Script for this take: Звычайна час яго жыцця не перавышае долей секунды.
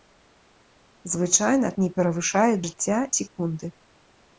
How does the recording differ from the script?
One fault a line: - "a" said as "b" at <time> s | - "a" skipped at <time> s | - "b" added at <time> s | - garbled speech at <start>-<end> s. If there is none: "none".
- "час яго жыцця" skipped at 1.7 s
- "долей" said as "жыцця" at 2.6 s